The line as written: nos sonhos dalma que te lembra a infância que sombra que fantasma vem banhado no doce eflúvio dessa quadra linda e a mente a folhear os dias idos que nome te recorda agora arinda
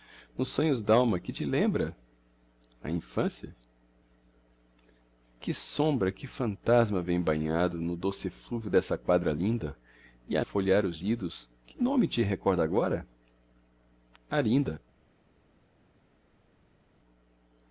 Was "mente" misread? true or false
true